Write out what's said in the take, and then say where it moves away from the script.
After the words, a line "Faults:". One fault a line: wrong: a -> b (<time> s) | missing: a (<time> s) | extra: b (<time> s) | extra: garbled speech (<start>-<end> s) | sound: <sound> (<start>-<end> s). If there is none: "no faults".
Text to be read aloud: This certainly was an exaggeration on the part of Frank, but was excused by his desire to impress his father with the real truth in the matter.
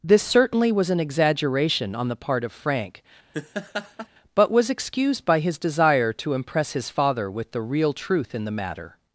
This certainly was an exaggeration on the part of Frank, but was excused by his desire to impress his father with the real truth in the matter.
Faults:
sound: laugh (3.3-4.1 s)